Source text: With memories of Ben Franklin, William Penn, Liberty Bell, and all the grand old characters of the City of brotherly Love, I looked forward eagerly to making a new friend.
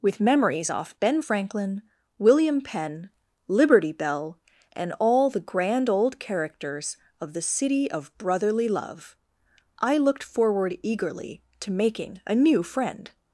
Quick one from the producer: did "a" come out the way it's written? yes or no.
yes